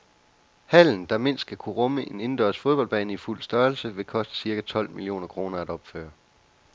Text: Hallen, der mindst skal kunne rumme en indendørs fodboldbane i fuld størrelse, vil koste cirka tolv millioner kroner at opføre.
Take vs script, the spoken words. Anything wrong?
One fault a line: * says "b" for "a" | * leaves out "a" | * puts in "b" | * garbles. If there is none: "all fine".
all fine